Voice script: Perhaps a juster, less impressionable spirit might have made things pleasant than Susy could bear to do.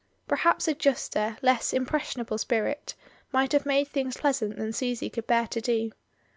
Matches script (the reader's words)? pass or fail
pass